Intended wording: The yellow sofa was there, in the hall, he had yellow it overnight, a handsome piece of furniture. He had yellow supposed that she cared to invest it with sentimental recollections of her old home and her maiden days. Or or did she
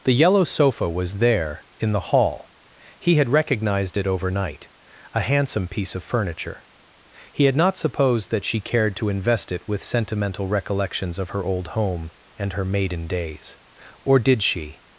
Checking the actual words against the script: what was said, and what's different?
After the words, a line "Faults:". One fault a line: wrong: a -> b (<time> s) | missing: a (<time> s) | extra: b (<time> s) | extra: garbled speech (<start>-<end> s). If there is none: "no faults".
The yellow sofa was there, in the hall, he had recognized it overnight, a handsome piece of furniture. He had not supposed that she cared to invest it with sentimental recollections of her old home and her maiden days. Or did she
Faults:
wrong: yellow -> recognized (3.3 s)
wrong: yellow -> not (7.6 s)
missing: or (14.2 s)